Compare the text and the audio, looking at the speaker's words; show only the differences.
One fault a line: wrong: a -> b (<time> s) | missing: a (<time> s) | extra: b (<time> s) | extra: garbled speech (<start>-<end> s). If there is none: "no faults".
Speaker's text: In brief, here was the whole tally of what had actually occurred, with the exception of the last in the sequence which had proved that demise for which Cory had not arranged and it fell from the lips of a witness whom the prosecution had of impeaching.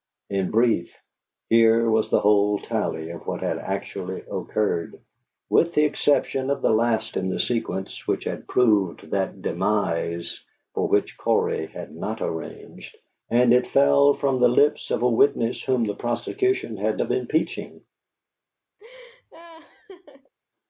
no faults